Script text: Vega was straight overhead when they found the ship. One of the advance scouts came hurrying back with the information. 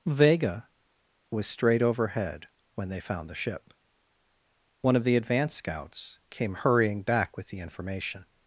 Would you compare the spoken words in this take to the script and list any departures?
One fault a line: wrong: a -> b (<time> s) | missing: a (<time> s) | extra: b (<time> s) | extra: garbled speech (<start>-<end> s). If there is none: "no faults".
no faults